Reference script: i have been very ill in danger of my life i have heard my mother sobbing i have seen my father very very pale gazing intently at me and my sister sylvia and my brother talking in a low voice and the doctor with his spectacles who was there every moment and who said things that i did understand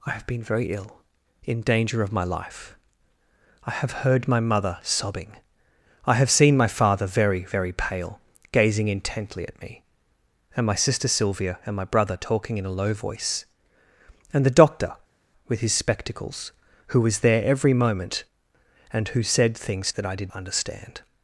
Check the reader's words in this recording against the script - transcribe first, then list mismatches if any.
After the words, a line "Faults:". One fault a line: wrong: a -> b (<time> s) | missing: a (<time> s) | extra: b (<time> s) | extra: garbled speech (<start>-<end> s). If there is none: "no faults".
i have been very ill in danger of my life i have heard my mother sobbing i have seen my father very very pale gazing intently at me and my sister sylvia and my brother talking in a low voice and the doctor with his spectacles who was there every moment and who said things that i did understand
Faults:
no faults